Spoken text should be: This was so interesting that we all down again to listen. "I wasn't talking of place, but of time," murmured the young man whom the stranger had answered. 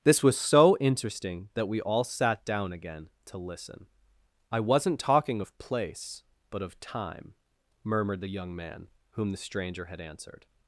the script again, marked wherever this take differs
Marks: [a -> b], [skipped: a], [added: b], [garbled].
This was so interesting that we all [added: sat] down again to listen. "I wasn't talking of place, but of time," murmured the young man whom the stranger had answered.